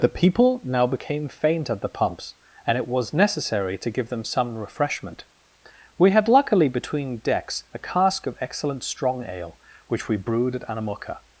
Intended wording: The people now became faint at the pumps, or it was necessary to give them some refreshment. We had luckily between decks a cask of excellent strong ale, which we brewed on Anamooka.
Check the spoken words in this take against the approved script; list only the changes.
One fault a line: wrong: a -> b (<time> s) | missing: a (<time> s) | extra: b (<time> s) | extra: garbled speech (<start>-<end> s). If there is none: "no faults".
wrong: or -> and (2.6 s)
wrong: on -> at (10.6 s)